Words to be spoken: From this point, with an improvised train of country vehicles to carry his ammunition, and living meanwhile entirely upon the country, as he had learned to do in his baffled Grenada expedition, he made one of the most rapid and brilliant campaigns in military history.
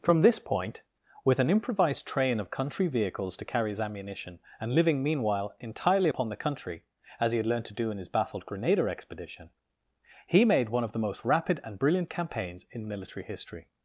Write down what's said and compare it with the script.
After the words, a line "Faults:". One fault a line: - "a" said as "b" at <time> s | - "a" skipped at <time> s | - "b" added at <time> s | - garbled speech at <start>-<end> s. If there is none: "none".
From this point, with an improvised train of country vehicles to carry his ammunition, and living meanwhile entirely upon the country, as he had learned to do in his baffled Grenada expedition, he made one of the most rapid and brilliant campaigns in military history.
Faults:
none